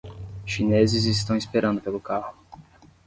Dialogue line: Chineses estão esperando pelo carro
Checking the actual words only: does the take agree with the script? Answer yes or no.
yes